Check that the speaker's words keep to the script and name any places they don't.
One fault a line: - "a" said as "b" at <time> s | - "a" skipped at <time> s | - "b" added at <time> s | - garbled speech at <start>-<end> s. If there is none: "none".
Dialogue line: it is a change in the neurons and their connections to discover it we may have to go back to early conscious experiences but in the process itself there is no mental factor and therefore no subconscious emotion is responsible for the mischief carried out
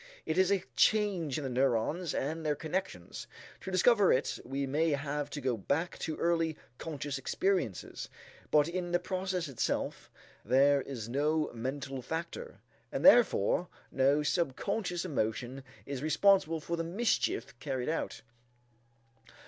none